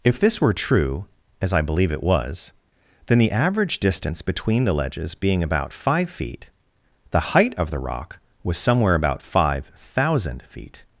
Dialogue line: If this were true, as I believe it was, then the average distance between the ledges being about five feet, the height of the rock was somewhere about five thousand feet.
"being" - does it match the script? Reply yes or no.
yes